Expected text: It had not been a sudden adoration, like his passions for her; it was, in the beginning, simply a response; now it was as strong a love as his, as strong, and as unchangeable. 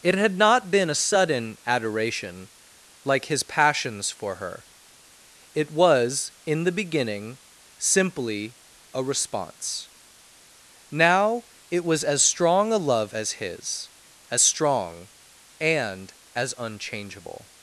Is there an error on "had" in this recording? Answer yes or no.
no